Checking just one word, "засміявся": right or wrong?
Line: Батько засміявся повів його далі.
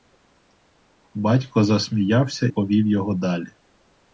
right